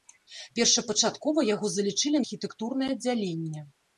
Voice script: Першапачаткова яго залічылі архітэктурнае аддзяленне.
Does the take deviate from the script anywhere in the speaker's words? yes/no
no